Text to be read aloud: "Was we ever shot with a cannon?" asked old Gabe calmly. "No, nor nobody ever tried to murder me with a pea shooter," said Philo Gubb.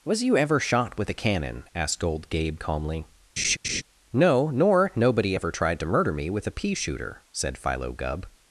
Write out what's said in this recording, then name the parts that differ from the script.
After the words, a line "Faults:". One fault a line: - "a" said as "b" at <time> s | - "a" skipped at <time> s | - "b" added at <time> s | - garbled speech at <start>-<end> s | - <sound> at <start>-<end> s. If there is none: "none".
"Was you ever shot with a cannon?" asked old Gabe calmly. "No, nor nobody ever tried to murder me with a pea shooter," said Philo Gubb.
Faults:
- "we" said as "you" at 0.2 s
- laugh at 3.4-3.8 s